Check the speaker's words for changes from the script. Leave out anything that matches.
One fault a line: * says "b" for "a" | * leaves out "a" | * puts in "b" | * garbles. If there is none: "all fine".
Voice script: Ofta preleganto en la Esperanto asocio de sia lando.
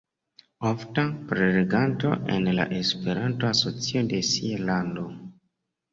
all fine